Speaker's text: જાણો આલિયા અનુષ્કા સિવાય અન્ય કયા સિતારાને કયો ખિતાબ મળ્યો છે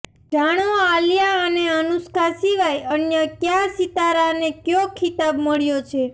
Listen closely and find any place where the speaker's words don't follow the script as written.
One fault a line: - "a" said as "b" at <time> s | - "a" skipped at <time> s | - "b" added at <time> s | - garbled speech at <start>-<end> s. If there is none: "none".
- "અને" added at 1.4 s